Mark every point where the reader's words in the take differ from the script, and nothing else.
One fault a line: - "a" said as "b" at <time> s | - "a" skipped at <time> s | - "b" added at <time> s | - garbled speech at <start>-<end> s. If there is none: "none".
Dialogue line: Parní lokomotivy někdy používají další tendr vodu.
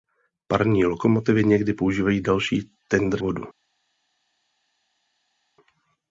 none